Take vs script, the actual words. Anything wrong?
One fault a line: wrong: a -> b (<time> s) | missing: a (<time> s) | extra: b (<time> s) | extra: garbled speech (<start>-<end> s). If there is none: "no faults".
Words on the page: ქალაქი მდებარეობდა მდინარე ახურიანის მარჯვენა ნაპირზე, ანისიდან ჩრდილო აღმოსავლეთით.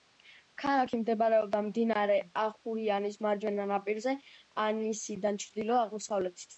no faults